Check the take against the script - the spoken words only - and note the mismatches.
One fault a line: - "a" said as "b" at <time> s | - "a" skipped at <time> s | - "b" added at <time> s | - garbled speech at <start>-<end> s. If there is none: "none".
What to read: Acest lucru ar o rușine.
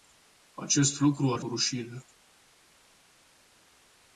none